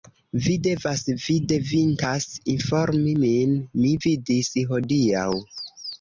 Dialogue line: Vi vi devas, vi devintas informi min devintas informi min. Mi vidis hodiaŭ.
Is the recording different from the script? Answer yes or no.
yes